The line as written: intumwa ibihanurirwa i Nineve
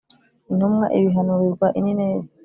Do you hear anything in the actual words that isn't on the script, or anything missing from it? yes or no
no